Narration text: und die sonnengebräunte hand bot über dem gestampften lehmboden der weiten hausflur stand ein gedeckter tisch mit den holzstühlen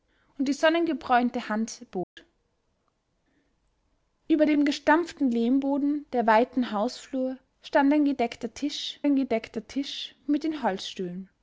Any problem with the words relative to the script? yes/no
yes